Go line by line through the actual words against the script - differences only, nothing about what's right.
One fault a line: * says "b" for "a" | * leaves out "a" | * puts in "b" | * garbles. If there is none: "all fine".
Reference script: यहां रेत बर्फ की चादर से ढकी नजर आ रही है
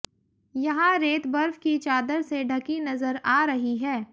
all fine